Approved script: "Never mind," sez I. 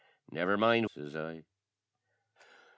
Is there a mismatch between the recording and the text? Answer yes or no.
no